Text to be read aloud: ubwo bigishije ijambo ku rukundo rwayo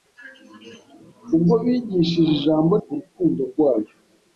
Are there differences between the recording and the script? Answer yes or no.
no